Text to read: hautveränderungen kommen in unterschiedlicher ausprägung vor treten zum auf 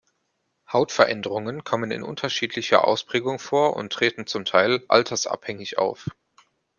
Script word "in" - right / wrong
right